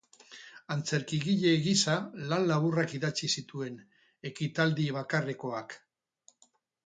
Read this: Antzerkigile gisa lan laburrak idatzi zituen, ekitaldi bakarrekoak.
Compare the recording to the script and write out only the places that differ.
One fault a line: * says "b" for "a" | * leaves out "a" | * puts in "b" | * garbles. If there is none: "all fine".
all fine